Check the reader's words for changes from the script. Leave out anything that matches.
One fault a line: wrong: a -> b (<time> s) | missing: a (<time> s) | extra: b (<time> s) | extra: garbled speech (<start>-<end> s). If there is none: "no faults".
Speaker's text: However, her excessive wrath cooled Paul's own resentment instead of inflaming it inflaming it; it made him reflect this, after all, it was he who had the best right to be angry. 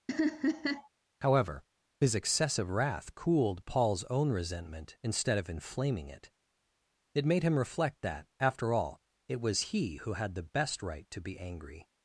wrong: her -> his (2.0 s)
missing: inflaming (6.3 s)
missing: it (7.3 s)
wrong: this -> that (8.0 s)